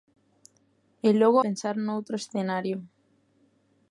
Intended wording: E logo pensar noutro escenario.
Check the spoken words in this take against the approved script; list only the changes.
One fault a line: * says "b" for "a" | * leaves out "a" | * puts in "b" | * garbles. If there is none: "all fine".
all fine